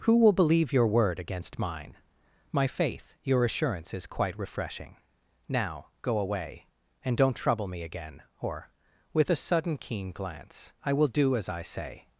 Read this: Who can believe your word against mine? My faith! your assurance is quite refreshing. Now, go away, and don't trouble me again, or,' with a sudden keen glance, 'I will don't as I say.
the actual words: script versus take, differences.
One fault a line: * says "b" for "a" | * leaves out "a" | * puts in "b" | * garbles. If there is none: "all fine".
* says "will" for "can"
* says "do" for "don't"